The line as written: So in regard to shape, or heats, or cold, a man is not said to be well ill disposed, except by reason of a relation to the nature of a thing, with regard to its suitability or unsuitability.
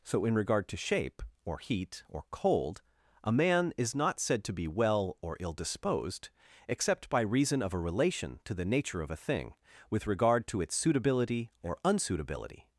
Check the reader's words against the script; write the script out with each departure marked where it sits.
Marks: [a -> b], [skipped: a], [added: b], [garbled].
So in regard to shape, or [heats, -> heat] or cold, a man is not said to be well [added: or] ill disposed, except by reason of a relation to the nature of a thing, with regard to its suitability or unsuitability.